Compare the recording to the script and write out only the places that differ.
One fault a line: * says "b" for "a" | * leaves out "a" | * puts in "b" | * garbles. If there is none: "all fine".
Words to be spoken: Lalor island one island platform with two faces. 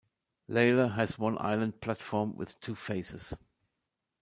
* says "has" for "island"